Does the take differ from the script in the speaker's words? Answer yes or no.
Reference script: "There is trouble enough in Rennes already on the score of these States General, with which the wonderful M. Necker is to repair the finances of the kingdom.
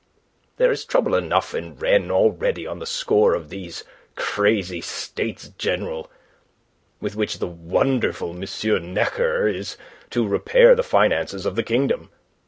yes